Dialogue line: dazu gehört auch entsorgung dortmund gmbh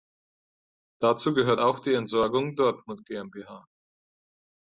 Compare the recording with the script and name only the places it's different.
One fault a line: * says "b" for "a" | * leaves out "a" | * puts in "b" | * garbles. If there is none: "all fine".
* puts in "die"